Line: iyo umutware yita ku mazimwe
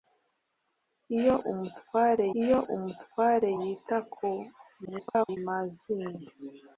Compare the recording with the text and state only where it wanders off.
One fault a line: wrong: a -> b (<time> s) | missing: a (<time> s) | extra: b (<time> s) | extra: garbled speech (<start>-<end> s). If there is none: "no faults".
extra: iyo umutware (2.4 s)
extra: garbled speech (4.8-5.4 s)